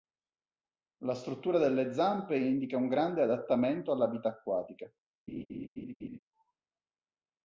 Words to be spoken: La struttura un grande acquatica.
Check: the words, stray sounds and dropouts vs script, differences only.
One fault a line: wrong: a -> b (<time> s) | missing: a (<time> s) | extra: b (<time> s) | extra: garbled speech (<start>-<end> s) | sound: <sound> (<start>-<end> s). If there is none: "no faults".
extra: delle zampe indica (1.6 s)
extra: adattamento alla vita (3.2 s)
sound: laugh (5.3-6.2 s)